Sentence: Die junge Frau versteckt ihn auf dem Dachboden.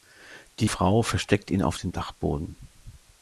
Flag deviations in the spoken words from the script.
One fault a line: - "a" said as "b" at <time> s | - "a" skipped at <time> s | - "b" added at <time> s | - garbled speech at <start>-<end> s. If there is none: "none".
- "junge" skipped at 0.7 s